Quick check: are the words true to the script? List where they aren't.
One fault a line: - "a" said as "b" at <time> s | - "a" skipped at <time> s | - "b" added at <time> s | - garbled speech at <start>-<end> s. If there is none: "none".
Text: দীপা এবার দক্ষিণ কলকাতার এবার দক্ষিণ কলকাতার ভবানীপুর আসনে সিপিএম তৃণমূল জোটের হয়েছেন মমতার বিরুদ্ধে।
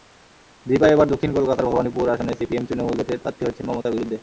- "এবার দক্ষিণ কলকাতার" skipped at 1.7 s
- "প্রার্থী" added at 3.2 s